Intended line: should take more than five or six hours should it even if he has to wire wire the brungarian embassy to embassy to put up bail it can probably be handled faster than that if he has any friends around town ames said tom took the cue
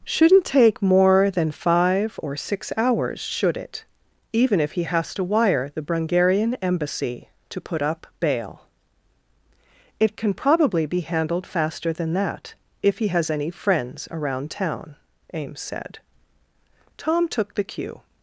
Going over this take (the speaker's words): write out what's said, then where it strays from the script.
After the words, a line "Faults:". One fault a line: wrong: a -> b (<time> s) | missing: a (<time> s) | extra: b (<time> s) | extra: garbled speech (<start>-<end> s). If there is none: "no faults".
shouldn't take more than five or six hours should it even if he has to wire the brungarian embassy to put up bail it can probably be handled faster than that if he has any friends around town ames said tom took the cue
Faults:
wrong: should -> shouldn't (0.0 s)
missing: wire (5.7 s)
missing: embassy to (7.6 s)